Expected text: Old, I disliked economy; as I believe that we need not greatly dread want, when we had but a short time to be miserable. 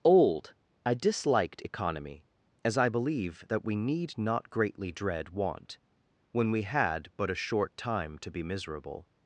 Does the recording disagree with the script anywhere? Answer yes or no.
no